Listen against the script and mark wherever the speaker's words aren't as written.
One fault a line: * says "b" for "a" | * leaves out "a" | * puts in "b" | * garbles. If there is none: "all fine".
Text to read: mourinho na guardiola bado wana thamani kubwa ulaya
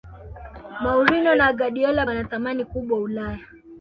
* leaves out "bado"